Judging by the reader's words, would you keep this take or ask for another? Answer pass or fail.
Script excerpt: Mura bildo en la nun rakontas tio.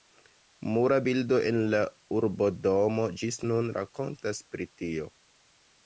fail